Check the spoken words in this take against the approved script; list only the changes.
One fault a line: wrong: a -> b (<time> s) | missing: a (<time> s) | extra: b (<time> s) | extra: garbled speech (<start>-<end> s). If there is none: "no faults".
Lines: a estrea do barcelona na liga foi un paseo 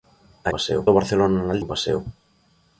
wrong: estrea -> paseo (0.5 s)
missing: liga foi (1.6 s)